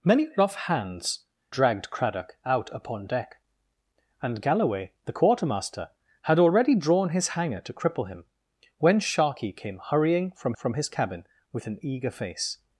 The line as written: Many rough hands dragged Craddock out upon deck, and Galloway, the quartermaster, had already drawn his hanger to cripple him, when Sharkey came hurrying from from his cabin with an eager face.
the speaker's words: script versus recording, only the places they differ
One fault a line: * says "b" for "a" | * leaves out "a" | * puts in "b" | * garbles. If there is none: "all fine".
all fine